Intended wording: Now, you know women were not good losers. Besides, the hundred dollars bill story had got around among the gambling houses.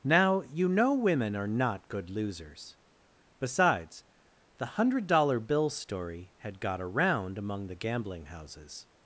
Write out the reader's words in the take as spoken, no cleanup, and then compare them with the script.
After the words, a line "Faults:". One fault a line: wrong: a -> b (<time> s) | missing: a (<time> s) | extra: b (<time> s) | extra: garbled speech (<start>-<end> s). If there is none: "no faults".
Now, you know women are not good losers. Besides, the hundred dollar bill story had got around among the gambling houses.
Faults:
wrong: were -> are (1.4 s)
wrong: dollars -> dollar (5.1 s)